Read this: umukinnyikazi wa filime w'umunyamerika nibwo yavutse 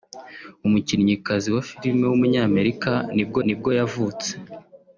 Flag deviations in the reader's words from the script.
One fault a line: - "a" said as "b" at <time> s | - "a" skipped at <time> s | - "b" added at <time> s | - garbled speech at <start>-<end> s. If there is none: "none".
- "nibwo" added at 3.5 s